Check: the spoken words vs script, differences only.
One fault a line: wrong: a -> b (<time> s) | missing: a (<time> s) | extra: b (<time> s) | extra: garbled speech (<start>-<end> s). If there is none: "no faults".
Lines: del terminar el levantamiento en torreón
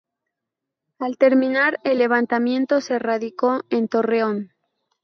wrong: del -> al (1.0 s)
extra: se radicó (2.8 s)